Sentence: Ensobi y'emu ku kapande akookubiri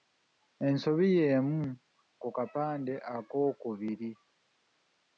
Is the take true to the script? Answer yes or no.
yes